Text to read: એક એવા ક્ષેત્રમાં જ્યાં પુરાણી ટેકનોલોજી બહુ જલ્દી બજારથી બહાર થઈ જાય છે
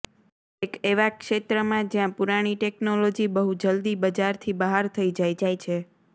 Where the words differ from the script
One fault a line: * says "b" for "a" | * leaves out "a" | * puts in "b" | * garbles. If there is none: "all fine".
* puts in "જાય"